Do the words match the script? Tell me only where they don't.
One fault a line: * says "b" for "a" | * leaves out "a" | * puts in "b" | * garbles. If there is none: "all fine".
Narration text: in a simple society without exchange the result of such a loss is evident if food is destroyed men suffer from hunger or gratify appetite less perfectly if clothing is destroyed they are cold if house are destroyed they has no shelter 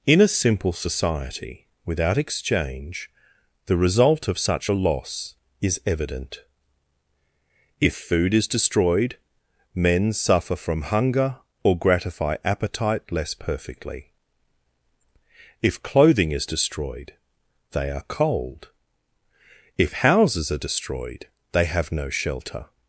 * says "houses" for "house"
* says "have" for "has"